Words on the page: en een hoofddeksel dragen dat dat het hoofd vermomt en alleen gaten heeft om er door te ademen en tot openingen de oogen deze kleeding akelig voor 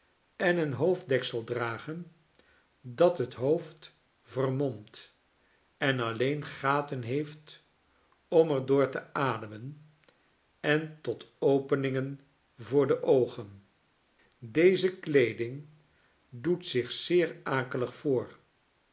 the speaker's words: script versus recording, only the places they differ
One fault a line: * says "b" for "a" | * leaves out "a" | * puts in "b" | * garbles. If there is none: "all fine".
* leaves out "dat"
* puts in "voor"
* puts in "doet zich zeer"